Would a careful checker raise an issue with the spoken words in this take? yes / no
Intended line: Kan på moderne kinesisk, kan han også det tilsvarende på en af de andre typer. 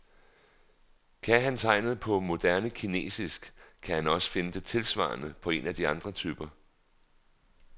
yes